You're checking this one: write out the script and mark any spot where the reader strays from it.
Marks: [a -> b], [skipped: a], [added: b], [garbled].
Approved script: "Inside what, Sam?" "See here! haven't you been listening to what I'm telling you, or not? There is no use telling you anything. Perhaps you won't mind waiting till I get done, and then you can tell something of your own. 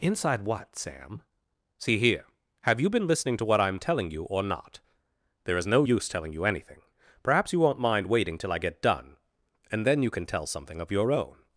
"Inside what, Sam?" "See here! [haven't -> have] you been listening to what I'm telling you, or not? There is no use telling you anything. Perhaps you won't mind waiting till I get done, and then you can tell something of your own.